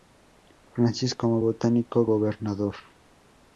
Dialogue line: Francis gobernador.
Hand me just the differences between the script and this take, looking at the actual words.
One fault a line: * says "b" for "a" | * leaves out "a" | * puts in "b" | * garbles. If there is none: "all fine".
* puts in "como botánico"